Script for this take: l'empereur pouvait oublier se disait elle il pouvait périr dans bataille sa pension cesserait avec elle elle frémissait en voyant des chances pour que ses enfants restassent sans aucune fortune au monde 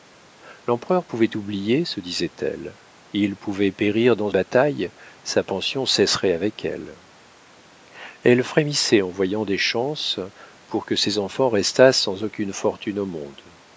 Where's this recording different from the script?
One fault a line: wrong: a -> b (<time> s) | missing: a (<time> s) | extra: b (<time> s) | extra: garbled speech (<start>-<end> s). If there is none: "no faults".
no faults